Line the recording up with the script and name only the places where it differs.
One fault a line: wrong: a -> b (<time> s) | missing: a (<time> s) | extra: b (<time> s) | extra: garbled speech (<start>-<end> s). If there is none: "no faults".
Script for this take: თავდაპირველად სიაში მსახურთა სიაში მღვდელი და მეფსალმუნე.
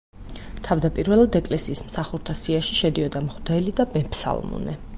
wrong: სიაში -> ეკლესიის (1.4 s)
extra: შედიოდა (2.8 s)